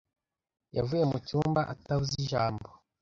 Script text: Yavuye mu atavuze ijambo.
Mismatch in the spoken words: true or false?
true